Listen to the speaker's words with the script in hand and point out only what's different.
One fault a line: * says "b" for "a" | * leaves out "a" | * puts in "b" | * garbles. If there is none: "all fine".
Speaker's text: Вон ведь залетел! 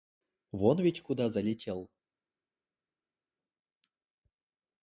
* puts in "куда"